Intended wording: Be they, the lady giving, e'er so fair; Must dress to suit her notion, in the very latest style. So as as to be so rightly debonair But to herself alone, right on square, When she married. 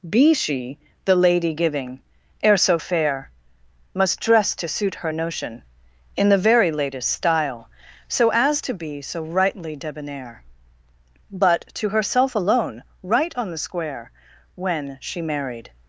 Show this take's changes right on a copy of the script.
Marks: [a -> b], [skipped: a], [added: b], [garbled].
Be [they, -> she] the lady giving, e'er so fair; Must dress to suit her notion, in the very latest style. So as [skipped: as] to be so rightly debonair But to herself alone, right on [added: the] square, When she married.